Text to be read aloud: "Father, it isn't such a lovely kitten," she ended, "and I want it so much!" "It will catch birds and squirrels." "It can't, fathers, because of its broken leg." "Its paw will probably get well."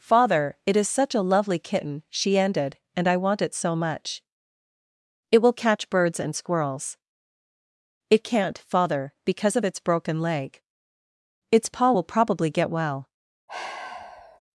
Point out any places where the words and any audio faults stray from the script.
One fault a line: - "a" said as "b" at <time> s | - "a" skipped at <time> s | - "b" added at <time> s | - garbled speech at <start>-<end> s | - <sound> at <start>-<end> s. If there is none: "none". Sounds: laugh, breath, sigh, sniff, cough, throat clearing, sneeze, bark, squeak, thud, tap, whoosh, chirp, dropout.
- "isn't" said as "is" at 0.8 s
- "fathers" said as "father" at 8.6 s
- sigh at 13.5-14.4 s